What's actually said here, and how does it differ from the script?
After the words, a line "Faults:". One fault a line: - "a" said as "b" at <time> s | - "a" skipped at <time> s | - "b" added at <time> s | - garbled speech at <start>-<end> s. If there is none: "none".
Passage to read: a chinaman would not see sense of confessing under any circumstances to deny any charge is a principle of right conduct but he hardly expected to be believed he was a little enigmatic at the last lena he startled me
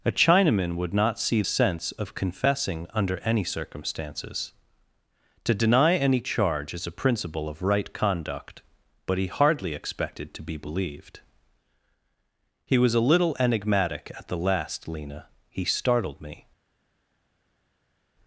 a chinaman would not see sense of confessing under any circumstances to deny any charge is a principle of right conduct but he hardly expected to be believed he was a little enigmatic at the last lena he startled me
Faults:
none